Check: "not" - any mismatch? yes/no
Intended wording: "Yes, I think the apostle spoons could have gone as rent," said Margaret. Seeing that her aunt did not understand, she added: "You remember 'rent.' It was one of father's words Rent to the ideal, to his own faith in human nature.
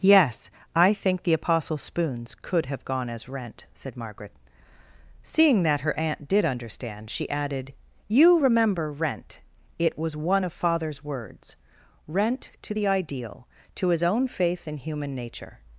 yes